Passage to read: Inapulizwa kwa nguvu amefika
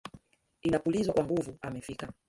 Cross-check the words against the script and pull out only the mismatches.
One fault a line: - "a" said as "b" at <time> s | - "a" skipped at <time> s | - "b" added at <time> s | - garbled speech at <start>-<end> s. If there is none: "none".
none